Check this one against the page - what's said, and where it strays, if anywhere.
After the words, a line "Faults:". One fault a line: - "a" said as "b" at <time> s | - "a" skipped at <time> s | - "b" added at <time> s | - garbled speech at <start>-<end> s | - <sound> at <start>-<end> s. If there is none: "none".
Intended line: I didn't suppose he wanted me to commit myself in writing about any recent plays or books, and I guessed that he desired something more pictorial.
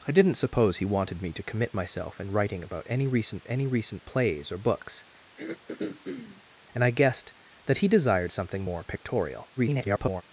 I didn't suppose he wanted me to commit myself in writing about any recent any recent plays or books, and I guessed that he desired something more pictorial. [garbled]
Faults:
- "any recent" added at 3.5 s
- throat clearing at 5.4-6.4 s
- garbled speech at 9.6-10.2 s